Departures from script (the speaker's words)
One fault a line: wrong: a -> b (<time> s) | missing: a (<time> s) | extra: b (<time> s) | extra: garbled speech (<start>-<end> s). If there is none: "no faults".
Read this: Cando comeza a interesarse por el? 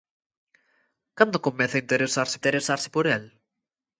extra: interesarse (2.4 s)